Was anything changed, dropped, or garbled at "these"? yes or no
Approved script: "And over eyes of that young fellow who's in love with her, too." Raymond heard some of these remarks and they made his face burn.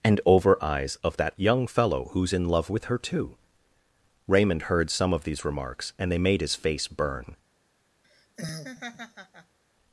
no